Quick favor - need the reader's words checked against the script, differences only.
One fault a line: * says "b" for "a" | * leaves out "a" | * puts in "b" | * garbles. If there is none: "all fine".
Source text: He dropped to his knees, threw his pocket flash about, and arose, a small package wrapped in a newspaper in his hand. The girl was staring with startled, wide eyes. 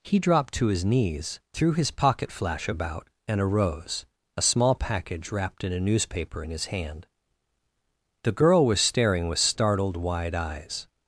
all fine